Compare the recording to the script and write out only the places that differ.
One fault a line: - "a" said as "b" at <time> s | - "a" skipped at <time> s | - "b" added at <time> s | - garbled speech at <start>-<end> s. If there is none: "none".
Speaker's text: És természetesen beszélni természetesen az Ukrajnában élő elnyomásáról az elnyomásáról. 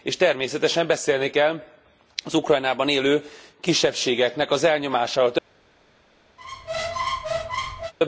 - "természetesen" said as "kell" at 1.3 s
- "elnyomásáról" said as "kisebbségeknek" at 3.6 s